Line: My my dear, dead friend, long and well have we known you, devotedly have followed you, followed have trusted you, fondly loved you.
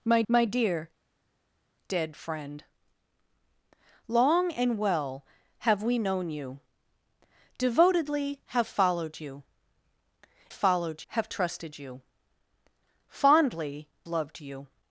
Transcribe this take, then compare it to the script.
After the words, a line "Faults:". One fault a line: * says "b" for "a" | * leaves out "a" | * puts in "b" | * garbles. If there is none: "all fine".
My my dear, dead friend, long and well have we known you, devotedly have followed you, followed have trusted you, fondly loved you.
Faults:
all fine